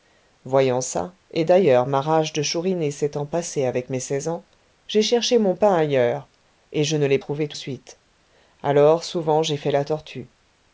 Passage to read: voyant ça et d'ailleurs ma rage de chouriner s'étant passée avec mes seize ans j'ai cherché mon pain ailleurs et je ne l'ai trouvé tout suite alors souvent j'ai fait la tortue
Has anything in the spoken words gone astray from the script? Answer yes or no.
no